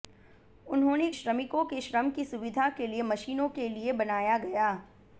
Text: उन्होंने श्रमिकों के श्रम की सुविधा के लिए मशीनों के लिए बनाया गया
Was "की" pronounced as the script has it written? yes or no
yes